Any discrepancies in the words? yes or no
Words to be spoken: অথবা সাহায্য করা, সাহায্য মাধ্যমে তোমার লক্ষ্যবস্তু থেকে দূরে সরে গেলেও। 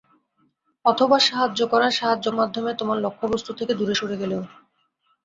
no